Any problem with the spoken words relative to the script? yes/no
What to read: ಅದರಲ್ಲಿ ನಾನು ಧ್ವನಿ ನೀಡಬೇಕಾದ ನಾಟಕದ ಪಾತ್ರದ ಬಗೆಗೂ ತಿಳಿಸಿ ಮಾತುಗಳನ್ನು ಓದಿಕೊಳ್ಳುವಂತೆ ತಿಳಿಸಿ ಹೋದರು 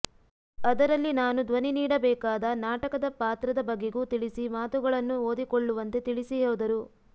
no